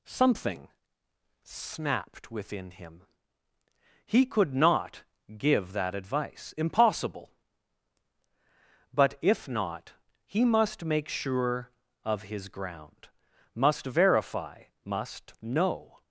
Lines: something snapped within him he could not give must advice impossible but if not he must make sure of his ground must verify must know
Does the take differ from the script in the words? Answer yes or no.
yes